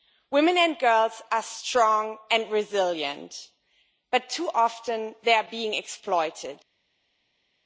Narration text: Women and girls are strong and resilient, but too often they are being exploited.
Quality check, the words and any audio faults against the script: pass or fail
pass